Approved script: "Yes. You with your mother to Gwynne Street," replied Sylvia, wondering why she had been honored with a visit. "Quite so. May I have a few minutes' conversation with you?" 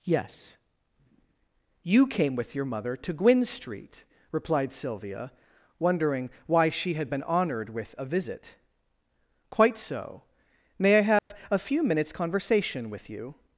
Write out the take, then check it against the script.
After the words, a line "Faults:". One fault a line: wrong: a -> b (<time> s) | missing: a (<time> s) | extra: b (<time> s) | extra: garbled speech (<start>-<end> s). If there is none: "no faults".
"Yes. You came with your mother to Gwynne Street," replied Sylvia, wondering why she had been honored with a visit. "Quite so. May I have a few minutes' conversation with you?"
Faults:
extra: came (2.1 s)